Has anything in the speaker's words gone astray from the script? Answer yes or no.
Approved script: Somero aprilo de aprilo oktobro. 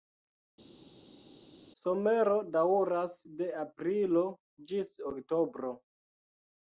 yes